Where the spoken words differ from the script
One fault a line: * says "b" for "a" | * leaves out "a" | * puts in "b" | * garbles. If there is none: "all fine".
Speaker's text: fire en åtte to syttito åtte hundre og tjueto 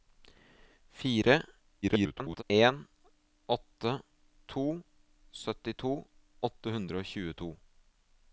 * garbles